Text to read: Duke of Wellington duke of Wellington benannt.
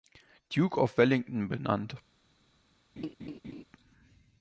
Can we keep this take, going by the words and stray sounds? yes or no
no